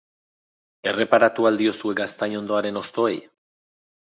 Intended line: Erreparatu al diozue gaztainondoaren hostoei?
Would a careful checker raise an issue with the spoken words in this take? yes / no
no